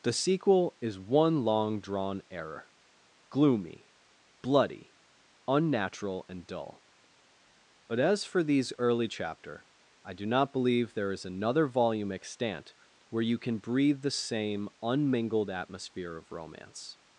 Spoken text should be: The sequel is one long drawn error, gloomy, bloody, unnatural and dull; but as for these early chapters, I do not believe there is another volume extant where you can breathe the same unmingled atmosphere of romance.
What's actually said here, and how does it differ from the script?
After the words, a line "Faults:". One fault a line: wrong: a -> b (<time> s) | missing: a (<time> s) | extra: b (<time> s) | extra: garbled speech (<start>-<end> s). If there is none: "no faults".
The sequel is one long drawn error, gloomy, bloody, unnatural and dull; but as for these early chapter, I do not believe there is another volume extant where you can breathe the same unmingled atmosphere of romance.
Faults:
wrong: chapters -> chapter (9.1 s)